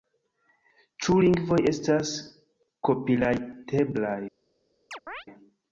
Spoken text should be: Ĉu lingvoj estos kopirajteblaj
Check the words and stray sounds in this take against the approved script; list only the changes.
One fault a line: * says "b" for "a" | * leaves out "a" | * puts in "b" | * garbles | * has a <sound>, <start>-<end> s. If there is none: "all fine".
* says "estas" for "estos"
* has a chirp, 4.9-5.3 s